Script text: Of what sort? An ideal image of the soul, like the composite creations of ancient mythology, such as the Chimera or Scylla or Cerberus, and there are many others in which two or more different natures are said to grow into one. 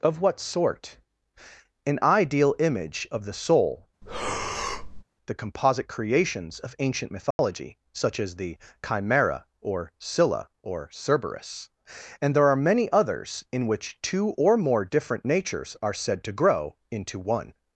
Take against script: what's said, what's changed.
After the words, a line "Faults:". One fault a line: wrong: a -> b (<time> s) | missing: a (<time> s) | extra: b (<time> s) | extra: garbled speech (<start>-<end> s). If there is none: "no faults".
Of what sort? An ideal image of the soul, the composite creations of ancient mythology, such as the Chimera or Scylla or Cerberus, and there are many others in which two or more different natures are said to grow into one.
Faults:
missing: like (3.9 s)